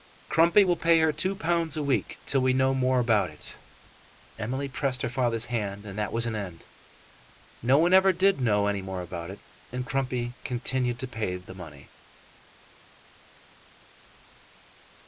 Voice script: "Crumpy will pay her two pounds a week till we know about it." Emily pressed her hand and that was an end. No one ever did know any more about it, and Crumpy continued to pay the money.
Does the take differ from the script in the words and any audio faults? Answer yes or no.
yes